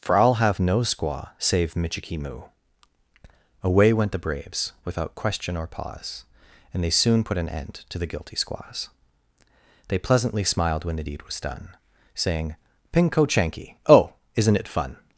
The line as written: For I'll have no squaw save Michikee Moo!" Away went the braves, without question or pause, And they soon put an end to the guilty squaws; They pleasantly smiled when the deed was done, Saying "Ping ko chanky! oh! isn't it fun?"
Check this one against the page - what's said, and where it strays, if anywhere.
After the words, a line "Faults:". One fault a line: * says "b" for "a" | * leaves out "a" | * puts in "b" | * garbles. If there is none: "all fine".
For I'll have no squaw save Michikee Moo!" Away went the braves, without question or pause, And they soon put an end to the guilty squaws; They pleasantly smiled when the deed was done, Saying "Ping ko chanky! oh! isn't it fun?"
Faults:
all fine